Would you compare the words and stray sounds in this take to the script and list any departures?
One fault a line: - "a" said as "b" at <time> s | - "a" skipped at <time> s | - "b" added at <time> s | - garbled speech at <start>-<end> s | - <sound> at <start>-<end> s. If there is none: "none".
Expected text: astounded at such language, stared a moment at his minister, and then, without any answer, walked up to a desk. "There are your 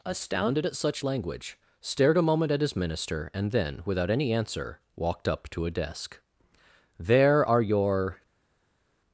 none